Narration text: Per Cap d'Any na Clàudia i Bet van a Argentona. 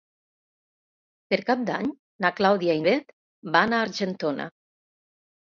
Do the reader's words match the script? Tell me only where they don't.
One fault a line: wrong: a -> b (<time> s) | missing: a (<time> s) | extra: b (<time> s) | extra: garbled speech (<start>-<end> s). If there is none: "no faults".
no faults